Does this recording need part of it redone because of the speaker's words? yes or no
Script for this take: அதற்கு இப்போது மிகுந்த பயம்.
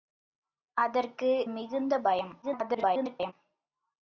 yes